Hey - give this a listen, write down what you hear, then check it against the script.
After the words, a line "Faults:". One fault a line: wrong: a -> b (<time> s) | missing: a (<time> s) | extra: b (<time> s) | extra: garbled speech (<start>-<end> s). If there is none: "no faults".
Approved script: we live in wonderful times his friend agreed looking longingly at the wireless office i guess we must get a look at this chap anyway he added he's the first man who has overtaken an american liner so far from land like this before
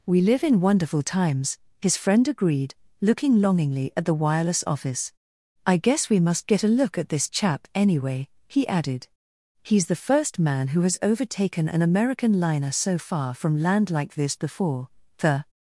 we live in wonderful times his friend agreed looking longingly at the wireless office i guess we must get a look at this chap anyway he added he's the first man who has overtaken an american liner so far from land like this before the
Faults:
extra: the (15.2 s)